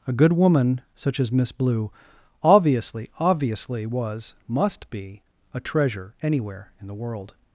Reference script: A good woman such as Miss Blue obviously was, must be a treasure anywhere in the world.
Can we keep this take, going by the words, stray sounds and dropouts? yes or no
no